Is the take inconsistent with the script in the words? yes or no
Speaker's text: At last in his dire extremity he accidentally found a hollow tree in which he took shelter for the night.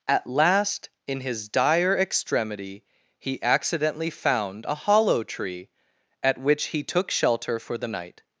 yes